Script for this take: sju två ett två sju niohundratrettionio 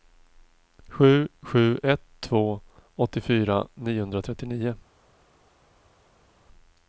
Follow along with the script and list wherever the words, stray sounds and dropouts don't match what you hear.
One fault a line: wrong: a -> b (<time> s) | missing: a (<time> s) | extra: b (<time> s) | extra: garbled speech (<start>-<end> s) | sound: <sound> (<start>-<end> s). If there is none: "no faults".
wrong: två -> sju (1.4 s)
wrong: sju -> åttiofyra (2.9 s)